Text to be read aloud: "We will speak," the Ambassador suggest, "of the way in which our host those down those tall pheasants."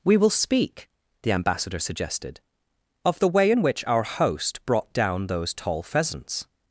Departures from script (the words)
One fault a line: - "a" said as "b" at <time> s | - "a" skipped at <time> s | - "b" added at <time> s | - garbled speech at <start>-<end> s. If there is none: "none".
- "suggest" said as "suggested" at 1.8 s
- "those" said as "brought" at 4.7 s